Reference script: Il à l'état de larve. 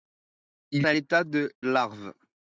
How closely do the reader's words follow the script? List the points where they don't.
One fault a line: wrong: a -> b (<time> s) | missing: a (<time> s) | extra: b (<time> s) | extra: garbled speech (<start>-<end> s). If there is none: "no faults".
no faults